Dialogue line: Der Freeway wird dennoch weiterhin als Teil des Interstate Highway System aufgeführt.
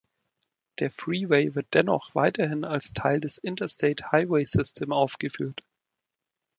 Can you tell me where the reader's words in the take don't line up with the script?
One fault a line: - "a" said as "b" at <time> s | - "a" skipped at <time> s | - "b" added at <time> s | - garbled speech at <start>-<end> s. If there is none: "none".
none